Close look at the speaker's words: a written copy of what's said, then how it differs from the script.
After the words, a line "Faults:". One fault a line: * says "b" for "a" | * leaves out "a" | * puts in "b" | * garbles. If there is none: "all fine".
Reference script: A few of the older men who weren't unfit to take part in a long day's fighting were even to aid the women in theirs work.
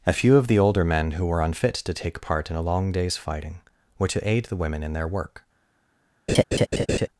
A few of the older men who were unfit to take part in a long day's fighting were to aid the women in their work.
Faults:
* says "were" for "weren't"
* leaves out "even"
* says "their" for "theirs"